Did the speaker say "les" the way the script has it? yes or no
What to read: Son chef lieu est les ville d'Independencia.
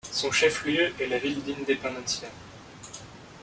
no